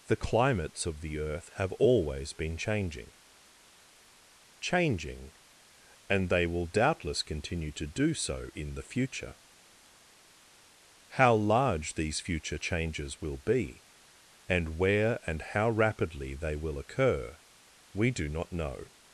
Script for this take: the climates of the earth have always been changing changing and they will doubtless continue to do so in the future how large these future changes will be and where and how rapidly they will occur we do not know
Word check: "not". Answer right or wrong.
right